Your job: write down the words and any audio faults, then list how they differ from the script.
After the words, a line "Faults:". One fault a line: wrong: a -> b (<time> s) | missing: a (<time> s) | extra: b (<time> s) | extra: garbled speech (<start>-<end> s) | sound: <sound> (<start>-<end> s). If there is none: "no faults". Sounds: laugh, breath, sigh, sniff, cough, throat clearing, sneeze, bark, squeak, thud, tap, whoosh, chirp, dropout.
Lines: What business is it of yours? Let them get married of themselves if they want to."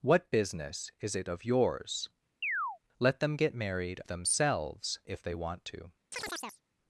What business is it of yours? Let them get married themselves if they want to."
Faults:
sound: chirp (2.4-2.8 s)
missing: of (4.0 s)
sound: chirp (6.1-6.6 s)